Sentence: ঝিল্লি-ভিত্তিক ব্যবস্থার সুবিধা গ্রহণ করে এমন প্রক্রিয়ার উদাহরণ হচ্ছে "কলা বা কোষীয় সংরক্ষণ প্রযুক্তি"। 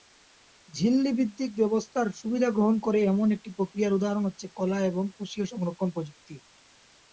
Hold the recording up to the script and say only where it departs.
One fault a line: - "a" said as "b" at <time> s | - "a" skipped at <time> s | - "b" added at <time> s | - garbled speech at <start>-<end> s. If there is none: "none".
- "একটি" added at 3.4 s
- "বা" said as "এবং" at 4.9 s